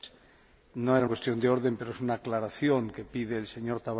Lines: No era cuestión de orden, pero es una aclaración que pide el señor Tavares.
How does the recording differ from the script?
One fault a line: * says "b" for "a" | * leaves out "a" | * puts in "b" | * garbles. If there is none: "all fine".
all fine